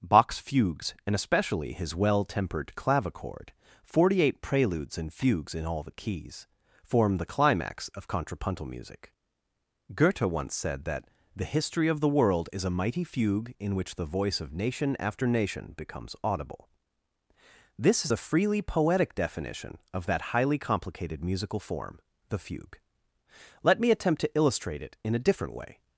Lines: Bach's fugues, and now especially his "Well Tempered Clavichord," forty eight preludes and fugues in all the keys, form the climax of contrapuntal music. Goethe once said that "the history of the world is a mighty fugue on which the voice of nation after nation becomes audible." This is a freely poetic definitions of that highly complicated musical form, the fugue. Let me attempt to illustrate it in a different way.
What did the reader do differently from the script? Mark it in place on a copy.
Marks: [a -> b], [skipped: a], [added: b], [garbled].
Bach's fugues, and [skipped: now] especially his "Well Tempered Clavichord," forty eight preludes and fugues in all the keys, form the climax of contrapuntal music. Goethe once said that "the history of the world is a mighty fugue [on -> in] which the voice of nation after nation becomes audible." This is a freely poetic [definitions -> definition] of that highly complicated musical form, the fugue. Let me attempt to illustrate it in a different way.